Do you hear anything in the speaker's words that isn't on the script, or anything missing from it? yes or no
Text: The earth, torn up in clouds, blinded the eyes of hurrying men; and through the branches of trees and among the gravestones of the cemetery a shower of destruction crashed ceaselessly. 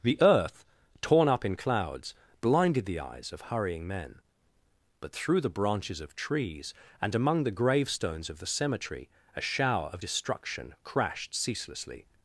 yes